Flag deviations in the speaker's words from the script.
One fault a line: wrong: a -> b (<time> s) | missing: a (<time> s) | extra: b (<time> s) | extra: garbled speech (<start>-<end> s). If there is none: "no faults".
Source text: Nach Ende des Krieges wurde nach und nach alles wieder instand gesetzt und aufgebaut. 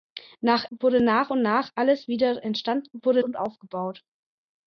missing: Ende des Krieges (0.7 s)
wrong: gesetzt -> wurde (2.9 s)